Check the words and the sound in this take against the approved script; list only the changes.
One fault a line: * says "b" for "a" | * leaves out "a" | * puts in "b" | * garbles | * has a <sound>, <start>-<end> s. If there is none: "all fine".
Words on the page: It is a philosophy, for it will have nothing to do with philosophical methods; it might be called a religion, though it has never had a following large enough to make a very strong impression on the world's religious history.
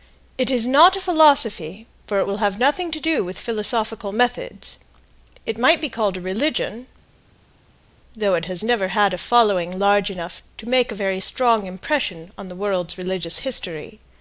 * puts in "not"